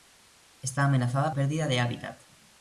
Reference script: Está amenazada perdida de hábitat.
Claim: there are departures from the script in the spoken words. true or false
false